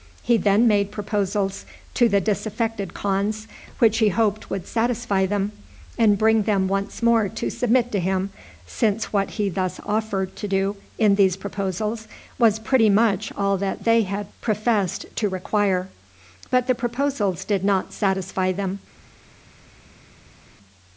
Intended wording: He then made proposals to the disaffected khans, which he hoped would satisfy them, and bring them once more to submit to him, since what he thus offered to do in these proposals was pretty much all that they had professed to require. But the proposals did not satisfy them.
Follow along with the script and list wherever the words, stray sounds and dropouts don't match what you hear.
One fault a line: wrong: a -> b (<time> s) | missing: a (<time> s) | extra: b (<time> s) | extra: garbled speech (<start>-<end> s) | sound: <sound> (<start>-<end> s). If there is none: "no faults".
no faults